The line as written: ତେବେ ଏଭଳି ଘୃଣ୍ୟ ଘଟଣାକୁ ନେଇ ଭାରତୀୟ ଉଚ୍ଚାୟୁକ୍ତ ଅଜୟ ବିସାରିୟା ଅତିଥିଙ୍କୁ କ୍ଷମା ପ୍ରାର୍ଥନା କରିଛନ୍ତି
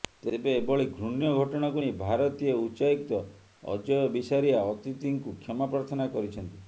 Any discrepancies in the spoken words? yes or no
no